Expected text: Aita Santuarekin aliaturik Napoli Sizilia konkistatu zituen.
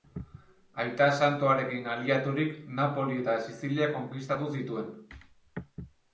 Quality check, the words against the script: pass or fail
fail